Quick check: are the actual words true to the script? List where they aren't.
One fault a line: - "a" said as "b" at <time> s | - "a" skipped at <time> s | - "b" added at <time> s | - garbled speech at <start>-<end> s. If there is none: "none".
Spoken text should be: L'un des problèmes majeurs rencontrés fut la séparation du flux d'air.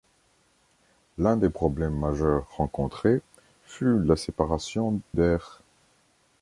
- "du flux" skipped at 5.0 s